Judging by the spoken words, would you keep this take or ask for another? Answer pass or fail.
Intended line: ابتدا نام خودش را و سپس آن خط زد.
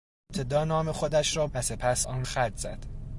pass